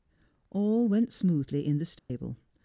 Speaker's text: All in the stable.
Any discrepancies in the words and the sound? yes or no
yes